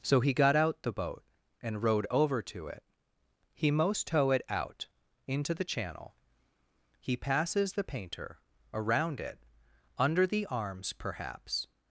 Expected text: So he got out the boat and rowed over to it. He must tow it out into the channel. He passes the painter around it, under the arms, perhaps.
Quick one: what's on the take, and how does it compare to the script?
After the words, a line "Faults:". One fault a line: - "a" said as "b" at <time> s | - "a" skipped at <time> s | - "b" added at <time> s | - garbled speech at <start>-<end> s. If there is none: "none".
So he got out the boat and rowed over to it. He most tow it out into the channel. He passes the painter around it, under the arms, perhaps.
Faults:
- "must" said as "most" at 3.7 s